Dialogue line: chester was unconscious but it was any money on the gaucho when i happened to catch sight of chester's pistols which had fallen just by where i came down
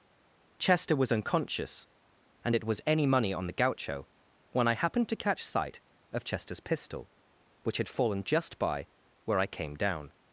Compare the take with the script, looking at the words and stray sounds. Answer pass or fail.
fail